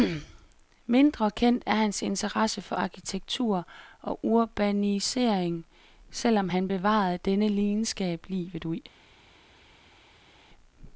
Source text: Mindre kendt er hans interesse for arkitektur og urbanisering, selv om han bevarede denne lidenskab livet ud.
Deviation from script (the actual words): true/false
false